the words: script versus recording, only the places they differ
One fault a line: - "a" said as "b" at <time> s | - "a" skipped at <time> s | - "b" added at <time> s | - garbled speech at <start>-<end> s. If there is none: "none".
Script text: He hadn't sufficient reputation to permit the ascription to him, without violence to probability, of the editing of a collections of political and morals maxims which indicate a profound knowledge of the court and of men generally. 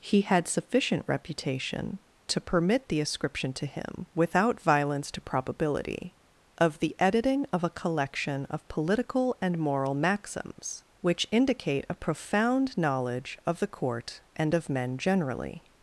- "hadn't" said as "had" at 0.2 s
- "collections" said as "collection" at 7.7 s
- "morals" said as "moral" at 9.6 s